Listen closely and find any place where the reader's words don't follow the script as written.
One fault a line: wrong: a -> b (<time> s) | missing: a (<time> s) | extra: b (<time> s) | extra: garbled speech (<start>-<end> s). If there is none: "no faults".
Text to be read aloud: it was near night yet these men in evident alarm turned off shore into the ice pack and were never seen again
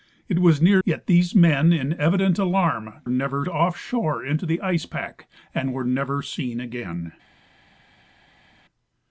missing: night (0.8 s)
wrong: turned -> never (3.1 s)